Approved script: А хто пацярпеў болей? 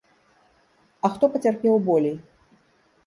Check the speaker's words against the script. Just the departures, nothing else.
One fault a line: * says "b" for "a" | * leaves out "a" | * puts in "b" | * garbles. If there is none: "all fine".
all fine